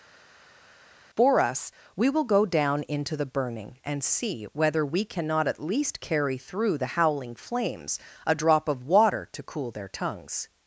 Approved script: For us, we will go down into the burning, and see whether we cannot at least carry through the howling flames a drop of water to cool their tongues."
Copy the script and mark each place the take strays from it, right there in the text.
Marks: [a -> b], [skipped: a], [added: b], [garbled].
For us, we will go down into the burning, and see whether we cannot at least carry through the howling flames a drop of water to cool their tongues."